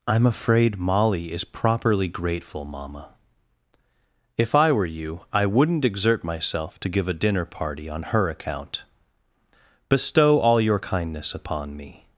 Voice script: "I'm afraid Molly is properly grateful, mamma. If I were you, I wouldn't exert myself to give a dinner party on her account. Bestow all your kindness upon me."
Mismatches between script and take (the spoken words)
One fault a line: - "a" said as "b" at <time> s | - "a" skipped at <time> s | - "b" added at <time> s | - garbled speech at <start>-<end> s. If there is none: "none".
none